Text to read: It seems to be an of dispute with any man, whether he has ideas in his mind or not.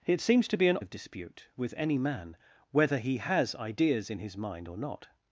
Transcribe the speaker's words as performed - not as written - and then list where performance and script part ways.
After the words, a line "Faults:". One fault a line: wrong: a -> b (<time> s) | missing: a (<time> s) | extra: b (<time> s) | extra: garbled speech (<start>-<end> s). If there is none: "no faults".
It seems to be an of dispute with any man, whether he has ideas in his mind or not.
Faults:
no faults